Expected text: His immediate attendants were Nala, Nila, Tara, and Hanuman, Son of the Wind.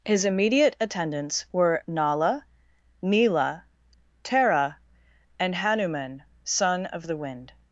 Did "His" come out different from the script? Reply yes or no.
no